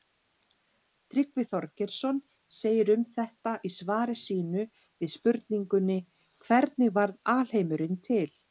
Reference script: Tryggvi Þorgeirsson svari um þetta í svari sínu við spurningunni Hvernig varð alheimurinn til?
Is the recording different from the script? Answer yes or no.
yes